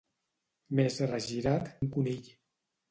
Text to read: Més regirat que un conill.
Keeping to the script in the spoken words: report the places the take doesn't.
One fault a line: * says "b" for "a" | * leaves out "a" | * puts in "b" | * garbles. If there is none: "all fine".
* leaves out "que"